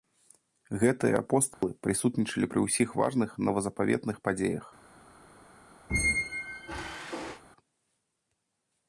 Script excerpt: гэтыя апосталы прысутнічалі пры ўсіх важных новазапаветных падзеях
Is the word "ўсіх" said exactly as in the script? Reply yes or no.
yes